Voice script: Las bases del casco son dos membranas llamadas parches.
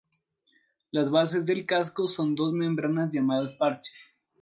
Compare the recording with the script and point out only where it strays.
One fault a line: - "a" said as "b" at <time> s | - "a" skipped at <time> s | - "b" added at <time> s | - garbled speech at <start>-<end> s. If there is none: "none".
none